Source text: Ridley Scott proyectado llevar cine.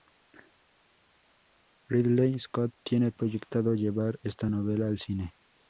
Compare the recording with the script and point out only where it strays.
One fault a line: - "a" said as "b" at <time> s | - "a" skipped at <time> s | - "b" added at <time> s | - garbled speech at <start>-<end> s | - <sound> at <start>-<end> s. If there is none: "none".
- "tiene" added at 2.8 s
- "esta novela al" added at 4.2 s